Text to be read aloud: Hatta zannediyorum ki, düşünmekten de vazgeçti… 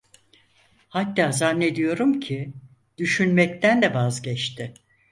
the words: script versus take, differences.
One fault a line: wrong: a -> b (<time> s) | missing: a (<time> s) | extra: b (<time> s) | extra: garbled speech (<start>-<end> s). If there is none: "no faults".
no faults